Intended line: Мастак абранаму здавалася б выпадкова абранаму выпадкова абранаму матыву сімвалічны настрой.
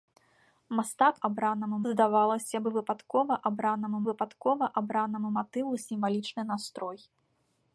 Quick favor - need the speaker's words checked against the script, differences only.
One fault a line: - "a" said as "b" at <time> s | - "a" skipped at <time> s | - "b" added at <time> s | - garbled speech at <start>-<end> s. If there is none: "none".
none